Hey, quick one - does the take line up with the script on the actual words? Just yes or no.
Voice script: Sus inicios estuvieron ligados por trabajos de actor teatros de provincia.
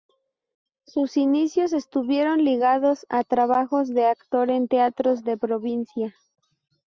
no